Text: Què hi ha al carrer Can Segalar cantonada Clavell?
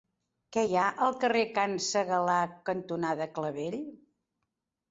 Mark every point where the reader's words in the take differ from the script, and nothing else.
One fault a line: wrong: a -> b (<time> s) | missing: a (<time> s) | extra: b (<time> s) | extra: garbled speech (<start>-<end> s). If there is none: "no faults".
no faults